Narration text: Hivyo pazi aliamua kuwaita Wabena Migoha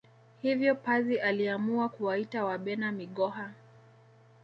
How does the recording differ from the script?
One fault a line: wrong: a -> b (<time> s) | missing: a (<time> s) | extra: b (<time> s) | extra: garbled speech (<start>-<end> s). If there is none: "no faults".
no faults